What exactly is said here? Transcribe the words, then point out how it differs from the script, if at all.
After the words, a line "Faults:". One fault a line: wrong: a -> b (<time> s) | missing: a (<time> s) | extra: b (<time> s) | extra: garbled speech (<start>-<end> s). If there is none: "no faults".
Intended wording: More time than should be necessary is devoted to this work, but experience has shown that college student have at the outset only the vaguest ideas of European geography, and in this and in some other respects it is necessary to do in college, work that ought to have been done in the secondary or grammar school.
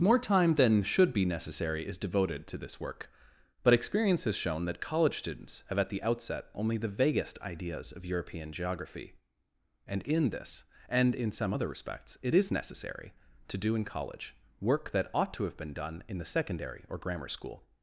More time than should be necessary is devoted to this work, but experience has shown that college students have at the outset only the vaguest ideas of European geography, and in this and in some other respects it is necessary to do in college, work that ought to have been done in the secondary or grammar school.
Faults:
wrong: student -> students (5.2 s)